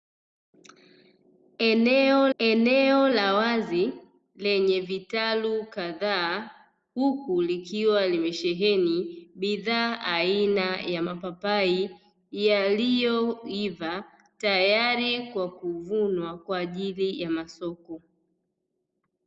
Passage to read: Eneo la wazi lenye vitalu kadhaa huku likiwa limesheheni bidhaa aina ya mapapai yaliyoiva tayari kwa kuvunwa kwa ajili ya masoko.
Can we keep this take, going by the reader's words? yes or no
no